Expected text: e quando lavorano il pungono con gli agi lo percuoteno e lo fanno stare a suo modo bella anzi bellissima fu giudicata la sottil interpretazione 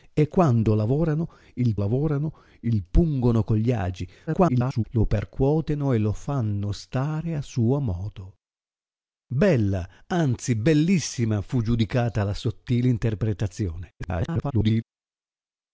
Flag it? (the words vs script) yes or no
yes